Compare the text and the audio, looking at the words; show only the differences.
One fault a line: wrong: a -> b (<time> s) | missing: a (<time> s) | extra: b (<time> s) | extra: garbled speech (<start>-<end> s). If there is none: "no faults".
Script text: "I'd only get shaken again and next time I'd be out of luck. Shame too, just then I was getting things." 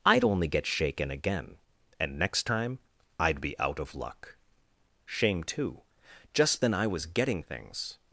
no faults